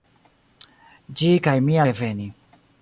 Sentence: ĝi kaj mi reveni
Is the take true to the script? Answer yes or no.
yes